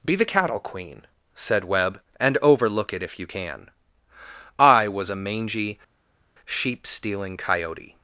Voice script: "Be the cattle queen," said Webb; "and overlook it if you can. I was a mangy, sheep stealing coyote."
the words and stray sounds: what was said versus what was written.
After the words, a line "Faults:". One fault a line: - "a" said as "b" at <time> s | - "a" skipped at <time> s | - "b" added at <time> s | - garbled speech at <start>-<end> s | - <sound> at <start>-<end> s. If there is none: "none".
"Be the cattle queen," said Webb; "and overlook it if you can. I was a mangy, sheep stealing coyote."
Faults:
none